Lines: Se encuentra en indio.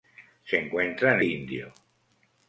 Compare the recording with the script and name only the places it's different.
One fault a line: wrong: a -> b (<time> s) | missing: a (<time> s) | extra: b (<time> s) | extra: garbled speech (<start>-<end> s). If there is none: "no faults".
no faults